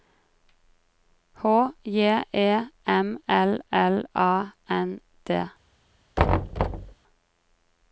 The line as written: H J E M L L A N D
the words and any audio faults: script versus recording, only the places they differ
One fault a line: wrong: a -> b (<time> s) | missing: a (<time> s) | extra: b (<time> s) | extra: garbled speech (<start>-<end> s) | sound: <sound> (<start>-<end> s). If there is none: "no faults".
sound: thud (6.2-6.9 s)